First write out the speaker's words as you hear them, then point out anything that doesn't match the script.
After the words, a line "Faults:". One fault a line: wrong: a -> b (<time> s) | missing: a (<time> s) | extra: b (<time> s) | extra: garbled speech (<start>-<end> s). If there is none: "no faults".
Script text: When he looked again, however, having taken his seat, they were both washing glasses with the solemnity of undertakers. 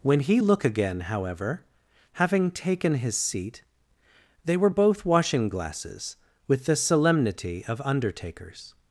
When he look again, however, having taken his seat, they were both washing glasses with the solemnity of undertakers.
Faults:
wrong: looked -> look (0.4 s)